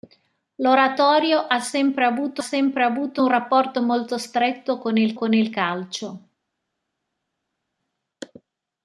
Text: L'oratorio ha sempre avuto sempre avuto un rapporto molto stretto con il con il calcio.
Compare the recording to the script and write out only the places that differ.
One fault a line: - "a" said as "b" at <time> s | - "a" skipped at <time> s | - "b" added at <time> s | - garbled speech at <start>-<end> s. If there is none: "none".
none